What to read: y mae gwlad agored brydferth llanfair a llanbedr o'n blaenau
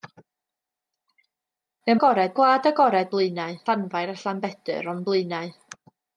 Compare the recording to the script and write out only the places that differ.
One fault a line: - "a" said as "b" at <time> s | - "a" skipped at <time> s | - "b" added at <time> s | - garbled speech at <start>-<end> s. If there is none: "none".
- "mae" said as "agored" at 2.0 s
- "brydferth" said as "blaenau" at 3.2 s